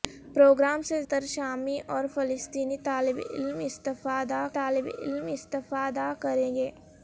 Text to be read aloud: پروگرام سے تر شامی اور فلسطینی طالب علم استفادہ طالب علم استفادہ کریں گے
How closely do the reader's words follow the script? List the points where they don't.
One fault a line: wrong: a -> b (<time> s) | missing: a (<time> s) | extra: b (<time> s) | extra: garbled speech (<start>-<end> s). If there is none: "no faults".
no faults